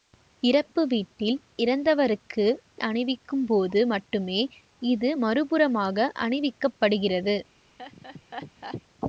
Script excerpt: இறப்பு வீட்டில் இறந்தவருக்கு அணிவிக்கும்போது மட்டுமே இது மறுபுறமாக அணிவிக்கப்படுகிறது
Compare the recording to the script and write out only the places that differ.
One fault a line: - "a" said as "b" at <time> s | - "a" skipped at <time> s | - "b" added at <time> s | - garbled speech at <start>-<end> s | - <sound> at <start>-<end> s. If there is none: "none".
- laugh at 7.8-8.8 s